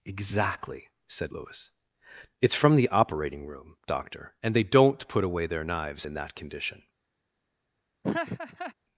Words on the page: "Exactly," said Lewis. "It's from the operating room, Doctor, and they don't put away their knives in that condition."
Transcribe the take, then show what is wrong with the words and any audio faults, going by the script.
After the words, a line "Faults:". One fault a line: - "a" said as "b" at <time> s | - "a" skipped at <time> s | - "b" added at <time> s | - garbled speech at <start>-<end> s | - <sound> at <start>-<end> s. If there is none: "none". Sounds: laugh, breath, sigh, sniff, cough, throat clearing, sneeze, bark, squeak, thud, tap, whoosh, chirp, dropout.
"Exactly," said Lewis. "It's from the operating room, Doctor, and they don't put away their knives in that condition."
Faults:
- laugh at 8.0-8.7 s